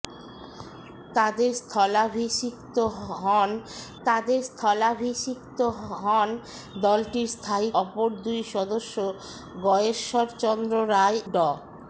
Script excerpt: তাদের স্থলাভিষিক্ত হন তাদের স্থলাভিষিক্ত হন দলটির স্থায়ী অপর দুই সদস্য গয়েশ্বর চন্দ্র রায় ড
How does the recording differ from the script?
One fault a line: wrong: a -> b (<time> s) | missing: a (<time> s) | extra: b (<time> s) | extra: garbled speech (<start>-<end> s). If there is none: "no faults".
no faults